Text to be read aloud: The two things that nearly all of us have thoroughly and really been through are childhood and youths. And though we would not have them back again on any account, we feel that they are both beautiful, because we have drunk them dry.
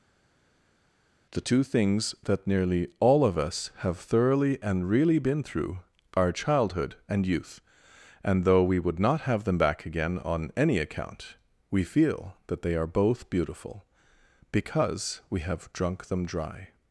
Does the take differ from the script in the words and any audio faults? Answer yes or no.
yes